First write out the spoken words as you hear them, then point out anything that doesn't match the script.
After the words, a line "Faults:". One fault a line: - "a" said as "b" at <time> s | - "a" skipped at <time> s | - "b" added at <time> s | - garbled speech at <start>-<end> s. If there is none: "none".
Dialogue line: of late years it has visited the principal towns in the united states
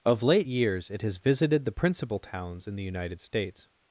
of late years it has visited the principal towns in the united states
Faults:
none